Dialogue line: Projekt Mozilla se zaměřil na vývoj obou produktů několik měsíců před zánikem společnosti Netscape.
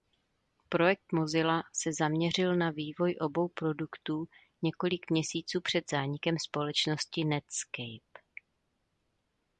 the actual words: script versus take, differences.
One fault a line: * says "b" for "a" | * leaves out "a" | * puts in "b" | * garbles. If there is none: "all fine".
all fine